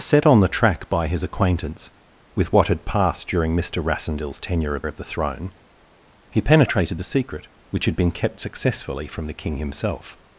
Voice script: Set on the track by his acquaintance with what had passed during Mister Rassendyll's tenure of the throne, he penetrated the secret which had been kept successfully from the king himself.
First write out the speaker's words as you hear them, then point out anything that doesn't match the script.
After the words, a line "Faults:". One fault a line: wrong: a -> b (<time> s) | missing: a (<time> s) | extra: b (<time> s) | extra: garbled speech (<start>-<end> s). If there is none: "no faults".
Set on the track by his acquaintance with what had passed during Mister Rassendyll's tenure of of the throne, he penetrated the secret which had been kept successfully from the king himself.
Faults:
extra: of (4.9 s)